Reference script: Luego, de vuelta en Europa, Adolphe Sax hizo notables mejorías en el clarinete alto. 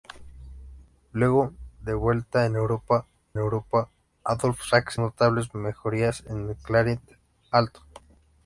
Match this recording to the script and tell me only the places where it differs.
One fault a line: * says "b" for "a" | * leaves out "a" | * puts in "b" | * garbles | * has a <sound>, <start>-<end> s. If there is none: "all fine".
* puts in "Europa"
* leaves out "hizo"